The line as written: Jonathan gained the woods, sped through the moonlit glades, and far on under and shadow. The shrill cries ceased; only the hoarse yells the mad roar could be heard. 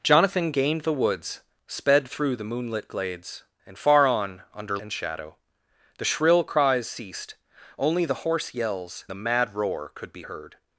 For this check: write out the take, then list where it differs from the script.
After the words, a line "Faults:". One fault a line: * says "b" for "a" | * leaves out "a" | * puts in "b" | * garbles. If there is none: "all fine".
Jonathan gained the woods, sped through the moonlit glades, and far on under and shadow. The shrill cries ceased; only the hoarse yells the mad roar could be heard.
Faults:
all fine